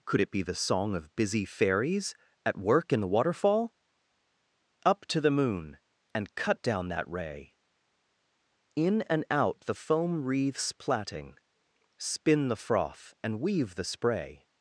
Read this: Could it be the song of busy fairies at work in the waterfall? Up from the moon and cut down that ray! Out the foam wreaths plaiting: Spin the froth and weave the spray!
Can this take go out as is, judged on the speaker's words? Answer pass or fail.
fail